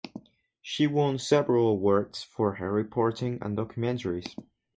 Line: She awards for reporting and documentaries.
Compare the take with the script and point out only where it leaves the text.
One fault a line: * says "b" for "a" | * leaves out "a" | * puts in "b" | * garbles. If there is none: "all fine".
* puts in "won several"
* puts in "her"